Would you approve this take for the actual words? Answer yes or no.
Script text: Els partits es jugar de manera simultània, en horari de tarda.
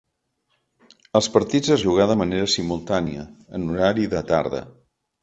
yes